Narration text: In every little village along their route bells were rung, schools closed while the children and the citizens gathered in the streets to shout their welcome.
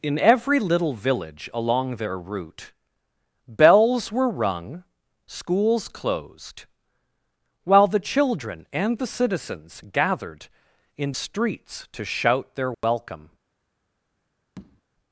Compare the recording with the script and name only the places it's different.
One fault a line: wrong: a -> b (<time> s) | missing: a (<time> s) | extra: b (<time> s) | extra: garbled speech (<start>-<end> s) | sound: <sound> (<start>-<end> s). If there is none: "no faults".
missing: the (11.1 s)
sound: dropout (12.7-12.8 s)
sound: tap (14.6-14.8 s)